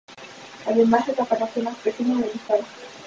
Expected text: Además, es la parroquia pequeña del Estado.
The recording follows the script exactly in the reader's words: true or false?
false